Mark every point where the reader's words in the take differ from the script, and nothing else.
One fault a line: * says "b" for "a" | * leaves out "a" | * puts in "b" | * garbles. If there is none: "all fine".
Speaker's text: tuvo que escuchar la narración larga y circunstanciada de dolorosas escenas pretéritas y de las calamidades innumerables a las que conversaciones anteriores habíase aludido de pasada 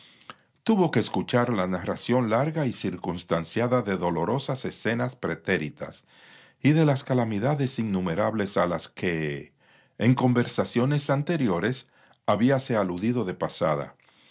* puts in "en"